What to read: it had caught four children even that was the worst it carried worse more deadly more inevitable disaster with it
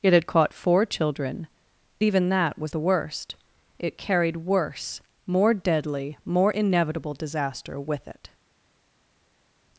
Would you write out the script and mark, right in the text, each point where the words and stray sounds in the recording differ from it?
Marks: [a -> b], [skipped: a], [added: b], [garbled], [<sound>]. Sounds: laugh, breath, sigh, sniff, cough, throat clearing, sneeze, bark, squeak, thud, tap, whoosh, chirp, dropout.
it had caught four children even that was the worst it carried worse more deadly more inevitable disaster with it